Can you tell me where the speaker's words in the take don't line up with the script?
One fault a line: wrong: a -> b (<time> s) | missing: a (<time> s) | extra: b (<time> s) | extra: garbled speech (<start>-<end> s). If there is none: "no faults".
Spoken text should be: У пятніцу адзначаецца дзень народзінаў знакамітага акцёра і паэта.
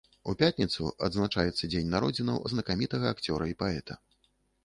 no faults